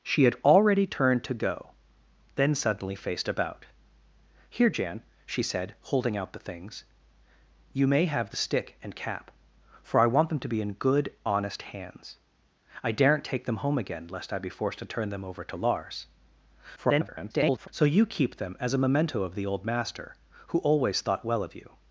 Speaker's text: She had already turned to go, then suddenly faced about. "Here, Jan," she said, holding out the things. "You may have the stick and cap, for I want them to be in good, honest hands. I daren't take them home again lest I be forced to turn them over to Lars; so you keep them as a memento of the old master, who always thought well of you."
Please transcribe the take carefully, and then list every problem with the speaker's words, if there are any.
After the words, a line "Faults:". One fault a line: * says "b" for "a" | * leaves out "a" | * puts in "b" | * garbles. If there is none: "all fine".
She had already turned to go, then suddenly faced about. "Here, Jan," she said, holding out the things. "You may have the stick and cap, for I want them to be in good, honest hands. I daren't take them home again lest I be forced to turn them over to Lars; [garbled] so you keep them as a memento of the old master, who always thought well of you."
Faults:
* garbles